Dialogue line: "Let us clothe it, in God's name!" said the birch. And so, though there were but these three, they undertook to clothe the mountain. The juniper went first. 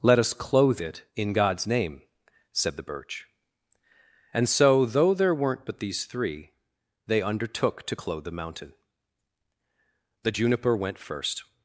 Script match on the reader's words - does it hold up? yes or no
no